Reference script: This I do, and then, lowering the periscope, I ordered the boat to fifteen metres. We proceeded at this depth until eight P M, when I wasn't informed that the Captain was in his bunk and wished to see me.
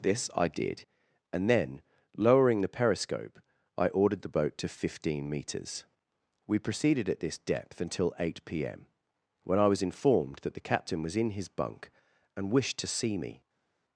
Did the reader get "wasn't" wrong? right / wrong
wrong